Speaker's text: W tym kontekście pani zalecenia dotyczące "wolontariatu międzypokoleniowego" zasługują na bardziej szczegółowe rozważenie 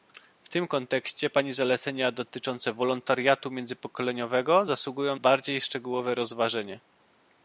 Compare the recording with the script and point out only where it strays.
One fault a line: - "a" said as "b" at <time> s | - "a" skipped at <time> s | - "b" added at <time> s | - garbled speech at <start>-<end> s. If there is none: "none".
- "na" skipped at 5.1 s